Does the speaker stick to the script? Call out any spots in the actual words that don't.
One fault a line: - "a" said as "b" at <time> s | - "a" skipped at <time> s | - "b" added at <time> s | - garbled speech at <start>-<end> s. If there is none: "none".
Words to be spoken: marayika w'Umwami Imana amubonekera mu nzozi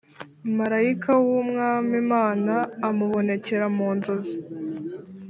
none